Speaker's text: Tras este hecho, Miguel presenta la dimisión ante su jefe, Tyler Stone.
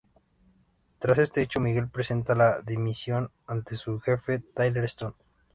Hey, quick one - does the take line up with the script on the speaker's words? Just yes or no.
yes